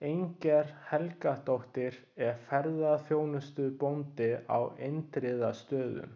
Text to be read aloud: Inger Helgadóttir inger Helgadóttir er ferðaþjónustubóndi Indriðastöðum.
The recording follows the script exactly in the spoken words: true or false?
false